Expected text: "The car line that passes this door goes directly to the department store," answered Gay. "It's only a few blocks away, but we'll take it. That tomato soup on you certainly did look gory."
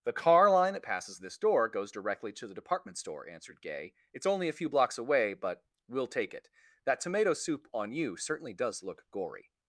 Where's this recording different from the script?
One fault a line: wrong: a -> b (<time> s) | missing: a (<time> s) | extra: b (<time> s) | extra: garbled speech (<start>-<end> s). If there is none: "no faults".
wrong: did -> does (8.5 s)